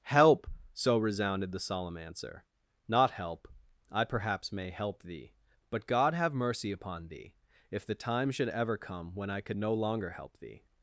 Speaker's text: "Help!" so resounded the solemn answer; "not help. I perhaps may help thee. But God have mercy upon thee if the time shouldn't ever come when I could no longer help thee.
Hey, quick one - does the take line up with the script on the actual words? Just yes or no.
no